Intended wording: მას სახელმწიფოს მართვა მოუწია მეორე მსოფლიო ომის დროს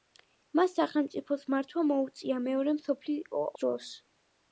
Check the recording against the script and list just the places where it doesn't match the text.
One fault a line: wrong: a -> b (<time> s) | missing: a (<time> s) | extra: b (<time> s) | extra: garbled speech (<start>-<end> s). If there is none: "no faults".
missing: ომის (3.4 s)